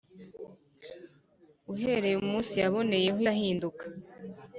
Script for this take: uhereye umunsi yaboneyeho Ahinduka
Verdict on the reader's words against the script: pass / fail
pass